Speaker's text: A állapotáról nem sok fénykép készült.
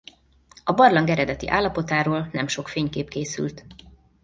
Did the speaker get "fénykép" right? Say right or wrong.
right